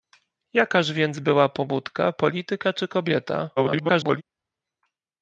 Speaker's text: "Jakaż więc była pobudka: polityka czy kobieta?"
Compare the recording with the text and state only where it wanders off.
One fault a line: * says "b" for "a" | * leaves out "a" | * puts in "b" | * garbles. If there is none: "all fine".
* garbles